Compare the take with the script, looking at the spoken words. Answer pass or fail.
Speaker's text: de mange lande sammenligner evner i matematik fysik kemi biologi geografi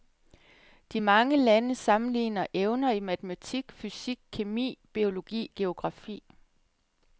pass